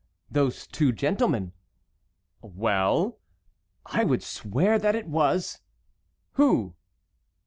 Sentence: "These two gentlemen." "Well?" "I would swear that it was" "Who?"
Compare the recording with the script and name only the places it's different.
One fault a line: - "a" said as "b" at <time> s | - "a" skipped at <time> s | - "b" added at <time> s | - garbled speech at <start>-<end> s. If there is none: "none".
- "These" said as "Those" at 0.3 s